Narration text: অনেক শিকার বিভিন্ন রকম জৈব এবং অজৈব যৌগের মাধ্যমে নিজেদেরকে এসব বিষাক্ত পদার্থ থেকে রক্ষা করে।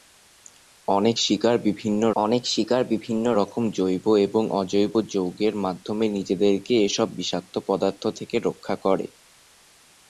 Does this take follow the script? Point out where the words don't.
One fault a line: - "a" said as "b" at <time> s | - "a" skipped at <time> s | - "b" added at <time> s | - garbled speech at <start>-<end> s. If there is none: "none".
- "অনেক শিকার বিভিন্ন" added at 2.1 s